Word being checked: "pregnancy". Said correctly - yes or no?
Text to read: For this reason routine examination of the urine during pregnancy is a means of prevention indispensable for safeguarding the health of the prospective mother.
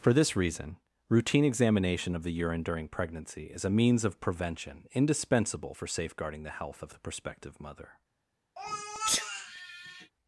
yes